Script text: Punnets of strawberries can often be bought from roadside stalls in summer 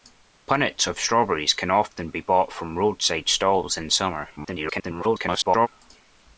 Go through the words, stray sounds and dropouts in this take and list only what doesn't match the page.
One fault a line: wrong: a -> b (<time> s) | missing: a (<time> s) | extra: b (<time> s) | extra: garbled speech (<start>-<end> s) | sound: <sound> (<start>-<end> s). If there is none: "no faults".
extra: garbled speech (4.4-5.7 s)